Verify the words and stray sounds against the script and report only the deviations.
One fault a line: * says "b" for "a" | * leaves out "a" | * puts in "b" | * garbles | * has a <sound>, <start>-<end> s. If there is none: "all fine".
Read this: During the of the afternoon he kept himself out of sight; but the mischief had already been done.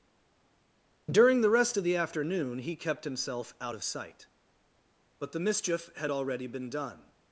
* puts in "rest"